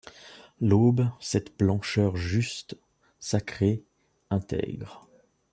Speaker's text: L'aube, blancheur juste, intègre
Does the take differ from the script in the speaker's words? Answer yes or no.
yes